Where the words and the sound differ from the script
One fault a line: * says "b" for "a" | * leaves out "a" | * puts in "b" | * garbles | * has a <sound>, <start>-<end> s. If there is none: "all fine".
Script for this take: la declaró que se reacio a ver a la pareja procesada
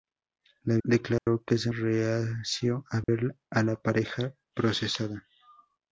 * has a dropout, 1.2-1.3 s
* has a dropout, 3.0-3.1 s